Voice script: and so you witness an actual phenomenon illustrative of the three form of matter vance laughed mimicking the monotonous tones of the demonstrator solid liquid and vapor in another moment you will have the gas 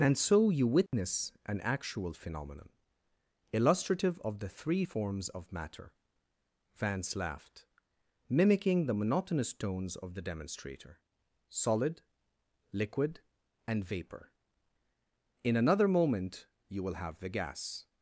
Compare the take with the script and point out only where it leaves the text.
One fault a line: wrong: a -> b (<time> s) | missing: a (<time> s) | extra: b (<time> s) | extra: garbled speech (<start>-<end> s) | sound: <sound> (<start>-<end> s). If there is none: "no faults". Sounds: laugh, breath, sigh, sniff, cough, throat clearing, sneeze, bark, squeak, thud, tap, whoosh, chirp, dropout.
sound: dropout (0.9-0.9 s)
wrong: form -> forms (4.8 s)